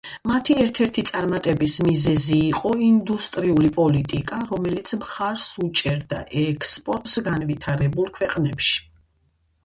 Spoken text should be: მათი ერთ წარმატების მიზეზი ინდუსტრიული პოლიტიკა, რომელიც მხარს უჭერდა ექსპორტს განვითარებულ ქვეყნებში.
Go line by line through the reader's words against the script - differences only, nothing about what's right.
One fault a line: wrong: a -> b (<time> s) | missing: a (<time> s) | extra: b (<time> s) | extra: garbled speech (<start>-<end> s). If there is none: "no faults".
extra: ერთი (0.8 s)
extra: იყო (2.5 s)